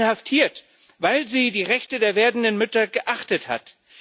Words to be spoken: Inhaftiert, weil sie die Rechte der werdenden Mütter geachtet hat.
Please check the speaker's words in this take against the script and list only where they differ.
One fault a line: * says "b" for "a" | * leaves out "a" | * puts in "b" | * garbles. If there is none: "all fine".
all fine